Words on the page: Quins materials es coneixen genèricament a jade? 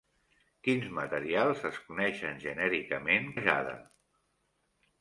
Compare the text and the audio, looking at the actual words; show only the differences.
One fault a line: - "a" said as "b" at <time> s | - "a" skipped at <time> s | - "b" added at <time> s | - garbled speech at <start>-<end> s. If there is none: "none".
none